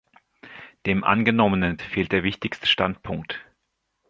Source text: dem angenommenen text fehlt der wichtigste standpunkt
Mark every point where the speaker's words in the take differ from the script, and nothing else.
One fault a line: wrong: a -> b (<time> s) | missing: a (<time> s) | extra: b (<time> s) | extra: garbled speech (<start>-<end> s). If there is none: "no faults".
missing: text (1.8 s)